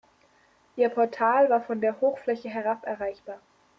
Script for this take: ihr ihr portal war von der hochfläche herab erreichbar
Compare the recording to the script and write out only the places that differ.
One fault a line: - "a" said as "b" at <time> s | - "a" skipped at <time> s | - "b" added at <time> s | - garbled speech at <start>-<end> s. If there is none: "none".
- "ihr" skipped at 0.9 s